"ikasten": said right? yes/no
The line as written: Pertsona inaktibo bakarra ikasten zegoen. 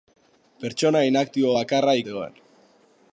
no